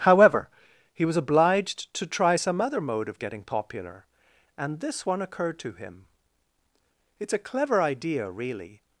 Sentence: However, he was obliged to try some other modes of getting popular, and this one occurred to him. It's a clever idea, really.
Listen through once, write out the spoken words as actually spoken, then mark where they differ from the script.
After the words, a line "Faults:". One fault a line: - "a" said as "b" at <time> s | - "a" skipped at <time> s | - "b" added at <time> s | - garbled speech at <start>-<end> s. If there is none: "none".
However, he was obliged to try some other mode of getting popular, and this one occurred to him. It's a clever idea, really.
Faults:
- "modes" said as "mode" at 2.8 s